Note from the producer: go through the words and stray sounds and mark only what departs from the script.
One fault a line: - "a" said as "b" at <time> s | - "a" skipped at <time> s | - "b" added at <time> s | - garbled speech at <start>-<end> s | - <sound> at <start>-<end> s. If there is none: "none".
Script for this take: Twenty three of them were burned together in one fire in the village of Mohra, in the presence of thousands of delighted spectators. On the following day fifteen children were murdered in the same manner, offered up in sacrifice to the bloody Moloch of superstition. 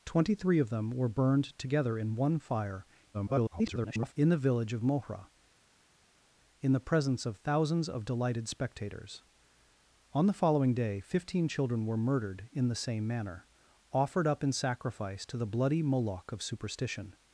- garbled speech at 3.1-4.1 s